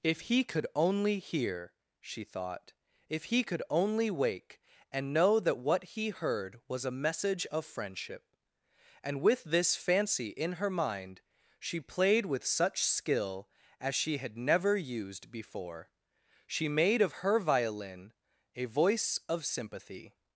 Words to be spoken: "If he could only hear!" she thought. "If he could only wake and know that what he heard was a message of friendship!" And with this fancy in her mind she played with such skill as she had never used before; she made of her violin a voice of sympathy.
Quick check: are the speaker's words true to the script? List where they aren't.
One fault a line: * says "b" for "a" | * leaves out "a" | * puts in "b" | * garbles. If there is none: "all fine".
all fine